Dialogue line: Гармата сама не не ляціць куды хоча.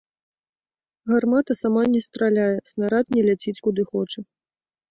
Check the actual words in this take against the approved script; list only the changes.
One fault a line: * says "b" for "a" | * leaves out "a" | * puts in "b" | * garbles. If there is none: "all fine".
* puts in "страляе снарад"